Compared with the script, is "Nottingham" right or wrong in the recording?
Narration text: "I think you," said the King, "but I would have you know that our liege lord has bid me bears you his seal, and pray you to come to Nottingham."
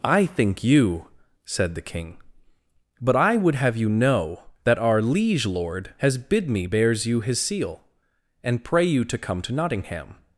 right